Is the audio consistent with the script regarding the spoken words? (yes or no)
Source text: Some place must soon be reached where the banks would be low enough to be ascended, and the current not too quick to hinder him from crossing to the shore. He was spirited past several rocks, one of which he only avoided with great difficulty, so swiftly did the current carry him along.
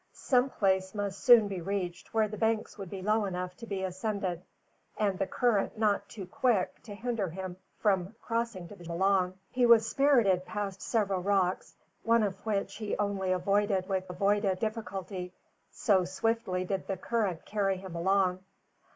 no